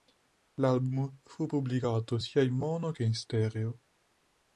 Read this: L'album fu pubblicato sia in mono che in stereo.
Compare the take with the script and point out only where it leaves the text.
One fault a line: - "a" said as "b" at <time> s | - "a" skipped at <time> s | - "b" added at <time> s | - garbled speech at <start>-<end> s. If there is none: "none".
none